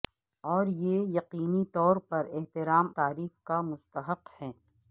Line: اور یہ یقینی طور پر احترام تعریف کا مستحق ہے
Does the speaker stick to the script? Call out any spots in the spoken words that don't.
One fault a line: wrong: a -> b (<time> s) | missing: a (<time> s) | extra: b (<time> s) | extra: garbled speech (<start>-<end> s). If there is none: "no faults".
no faults